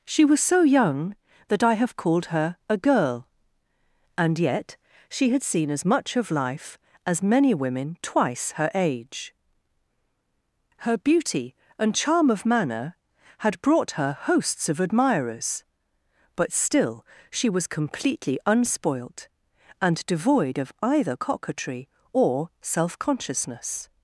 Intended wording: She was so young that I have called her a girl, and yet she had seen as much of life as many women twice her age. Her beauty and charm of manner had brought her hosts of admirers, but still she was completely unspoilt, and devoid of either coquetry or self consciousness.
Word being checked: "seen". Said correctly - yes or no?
yes